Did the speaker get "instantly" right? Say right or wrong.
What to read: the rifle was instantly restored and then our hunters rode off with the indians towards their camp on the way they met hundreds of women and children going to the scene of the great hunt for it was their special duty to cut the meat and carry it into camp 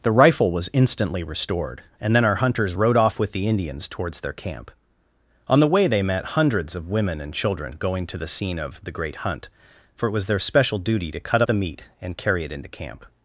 right